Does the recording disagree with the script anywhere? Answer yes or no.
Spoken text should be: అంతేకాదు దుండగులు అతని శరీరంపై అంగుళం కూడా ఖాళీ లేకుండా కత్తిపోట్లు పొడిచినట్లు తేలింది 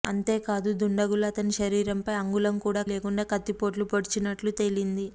yes